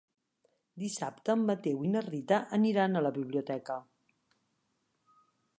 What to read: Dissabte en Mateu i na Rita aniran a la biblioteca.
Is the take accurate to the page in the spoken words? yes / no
yes